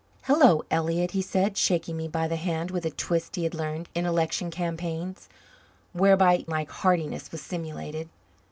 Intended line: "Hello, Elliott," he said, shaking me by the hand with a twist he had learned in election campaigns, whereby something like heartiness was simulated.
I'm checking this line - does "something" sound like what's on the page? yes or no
no